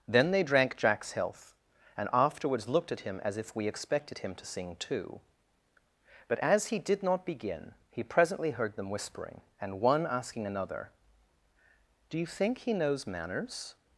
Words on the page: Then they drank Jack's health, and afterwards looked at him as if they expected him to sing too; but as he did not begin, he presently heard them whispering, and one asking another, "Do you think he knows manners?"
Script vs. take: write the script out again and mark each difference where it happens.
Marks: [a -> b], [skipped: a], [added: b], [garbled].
Then they drank Jack's health, and afterwards looked at him as if [they -> we] expected him to sing too; but as he did not begin, he presently heard them whispering, and one asking another, "Do you think he knows manners?"